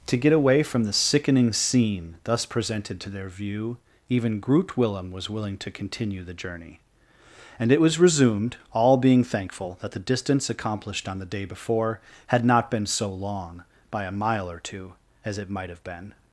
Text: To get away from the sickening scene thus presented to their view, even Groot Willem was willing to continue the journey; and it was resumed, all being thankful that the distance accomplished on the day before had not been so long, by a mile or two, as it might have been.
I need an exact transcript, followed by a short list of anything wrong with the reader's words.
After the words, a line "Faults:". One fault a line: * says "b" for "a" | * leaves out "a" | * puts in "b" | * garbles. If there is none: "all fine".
To get away from the sickening scene thus presented to their view, even Groot Willem was willing to continue the journey; and it was resumed, all being thankful that the distance accomplished on the day before had not been so long, by a mile or two, as it might have been.
Faults:
all fine